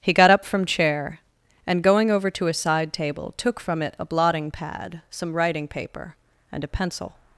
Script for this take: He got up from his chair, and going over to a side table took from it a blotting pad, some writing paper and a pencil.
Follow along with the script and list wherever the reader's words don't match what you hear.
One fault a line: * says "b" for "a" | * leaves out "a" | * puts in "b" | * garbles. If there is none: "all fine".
* leaves out "his"